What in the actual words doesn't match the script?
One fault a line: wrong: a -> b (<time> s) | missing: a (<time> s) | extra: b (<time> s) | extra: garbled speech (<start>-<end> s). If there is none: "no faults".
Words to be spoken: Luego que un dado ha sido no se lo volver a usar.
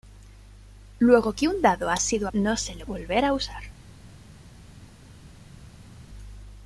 no faults